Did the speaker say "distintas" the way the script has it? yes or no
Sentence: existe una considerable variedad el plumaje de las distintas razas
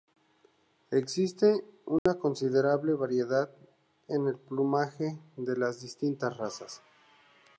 yes